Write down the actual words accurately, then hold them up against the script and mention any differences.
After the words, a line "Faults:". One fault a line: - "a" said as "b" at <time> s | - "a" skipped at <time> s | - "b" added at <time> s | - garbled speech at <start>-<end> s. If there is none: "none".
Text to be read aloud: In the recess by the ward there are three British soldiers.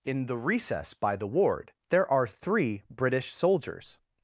In the recess by the ward there are three British soldiers.
Faults:
none